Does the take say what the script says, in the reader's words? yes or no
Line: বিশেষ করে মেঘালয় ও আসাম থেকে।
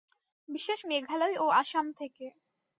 no